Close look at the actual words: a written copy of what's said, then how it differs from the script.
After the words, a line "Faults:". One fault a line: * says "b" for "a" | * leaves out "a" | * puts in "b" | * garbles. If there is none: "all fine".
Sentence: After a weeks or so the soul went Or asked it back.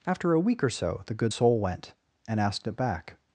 After a week or so the good soul went And asked it back.
Faults:
* says "week" for "weeks"
* puts in "good"
* says "And" for "Or"